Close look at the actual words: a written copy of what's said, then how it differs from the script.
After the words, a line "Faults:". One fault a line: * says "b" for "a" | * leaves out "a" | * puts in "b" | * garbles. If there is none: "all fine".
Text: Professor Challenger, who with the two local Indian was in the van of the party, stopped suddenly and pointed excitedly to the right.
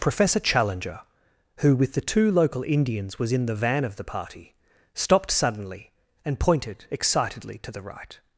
Professor Challenger, who with the two local Indians was in the van of the party, stopped suddenly and pointed excitedly to the right.
Faults:
* says "Indians" for "Indian"